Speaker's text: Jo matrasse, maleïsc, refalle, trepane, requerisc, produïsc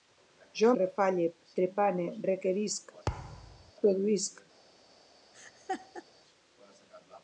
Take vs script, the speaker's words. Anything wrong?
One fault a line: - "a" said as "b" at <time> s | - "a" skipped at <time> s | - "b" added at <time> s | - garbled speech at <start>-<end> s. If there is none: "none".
- "matrasse maleïsc" skipped at 0.7 s